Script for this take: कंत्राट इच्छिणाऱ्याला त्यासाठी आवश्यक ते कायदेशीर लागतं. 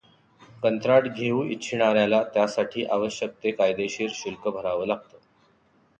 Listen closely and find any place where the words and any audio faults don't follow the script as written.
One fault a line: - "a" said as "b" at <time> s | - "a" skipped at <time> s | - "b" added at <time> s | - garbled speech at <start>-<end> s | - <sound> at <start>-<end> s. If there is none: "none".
- "घेऊ" added at 1.1 s
- "शुल्क भरावं" added at 4.1 s